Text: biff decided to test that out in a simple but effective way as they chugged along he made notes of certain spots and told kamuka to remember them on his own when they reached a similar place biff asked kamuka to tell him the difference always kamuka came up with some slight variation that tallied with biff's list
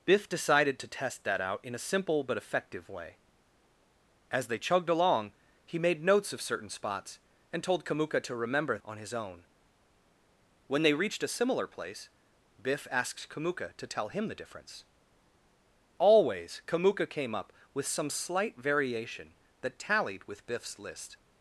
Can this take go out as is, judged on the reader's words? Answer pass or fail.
fail